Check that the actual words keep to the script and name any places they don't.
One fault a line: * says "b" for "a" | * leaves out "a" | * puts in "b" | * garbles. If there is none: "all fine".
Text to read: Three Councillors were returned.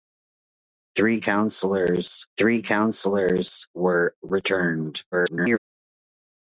* puts in "three Councillors"
* garbles